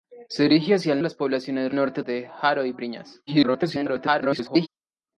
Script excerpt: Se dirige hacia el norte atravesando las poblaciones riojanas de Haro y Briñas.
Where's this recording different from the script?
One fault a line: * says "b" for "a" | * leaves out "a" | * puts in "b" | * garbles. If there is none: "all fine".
* leaves out "norte atravesando"
* says "norte" for "riojanas"
* garbles